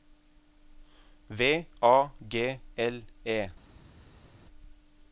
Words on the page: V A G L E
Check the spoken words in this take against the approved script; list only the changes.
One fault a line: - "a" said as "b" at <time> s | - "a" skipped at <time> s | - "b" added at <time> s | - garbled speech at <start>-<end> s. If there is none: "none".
none